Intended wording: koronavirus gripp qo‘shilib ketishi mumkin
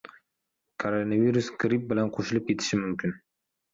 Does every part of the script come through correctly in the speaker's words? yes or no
no